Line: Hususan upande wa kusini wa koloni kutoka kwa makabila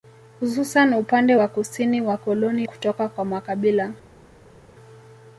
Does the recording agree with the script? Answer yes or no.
yes